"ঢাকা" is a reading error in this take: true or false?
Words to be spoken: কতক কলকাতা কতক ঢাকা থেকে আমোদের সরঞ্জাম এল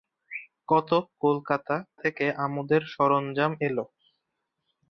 true